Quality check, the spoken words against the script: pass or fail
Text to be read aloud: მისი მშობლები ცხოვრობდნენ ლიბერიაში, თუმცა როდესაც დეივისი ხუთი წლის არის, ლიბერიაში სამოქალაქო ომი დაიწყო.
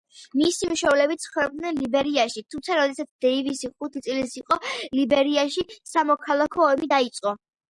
fail